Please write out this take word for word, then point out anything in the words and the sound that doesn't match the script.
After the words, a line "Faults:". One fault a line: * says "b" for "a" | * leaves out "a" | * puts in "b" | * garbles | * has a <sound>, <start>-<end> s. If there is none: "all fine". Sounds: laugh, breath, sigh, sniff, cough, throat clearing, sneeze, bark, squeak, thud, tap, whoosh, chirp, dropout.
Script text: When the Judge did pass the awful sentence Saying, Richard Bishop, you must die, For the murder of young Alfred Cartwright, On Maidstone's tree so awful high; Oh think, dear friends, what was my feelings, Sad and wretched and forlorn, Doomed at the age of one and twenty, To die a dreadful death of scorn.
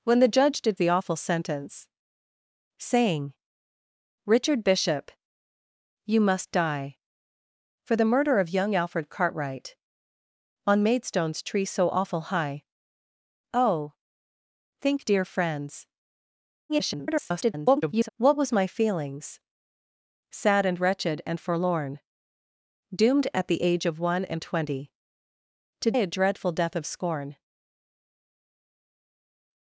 When the Judge did the awful sentence Saying, Richard Bishop, you must die, For the murder of young Alfred Cartwright, On Maidstone's tree so awful high; Oh think, dear friends, [garbled] what was my feelings, Sad and wretched and forlorn, Doomed at the age of one and twenty, To a dreadful death of scorn.
Faults:
* leaves out "pass"
* garbles
* leaves out "die"